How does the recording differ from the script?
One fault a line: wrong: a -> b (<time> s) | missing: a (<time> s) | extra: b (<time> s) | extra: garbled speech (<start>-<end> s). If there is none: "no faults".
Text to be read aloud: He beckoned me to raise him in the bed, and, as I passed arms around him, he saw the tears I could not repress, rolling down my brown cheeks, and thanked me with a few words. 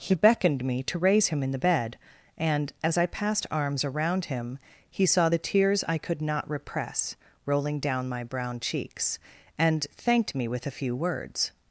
no faults